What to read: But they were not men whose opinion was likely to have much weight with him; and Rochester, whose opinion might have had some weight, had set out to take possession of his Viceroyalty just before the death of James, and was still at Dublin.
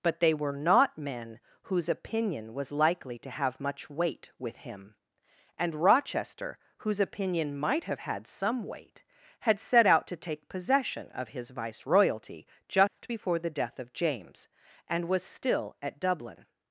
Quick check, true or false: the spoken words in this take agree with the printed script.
true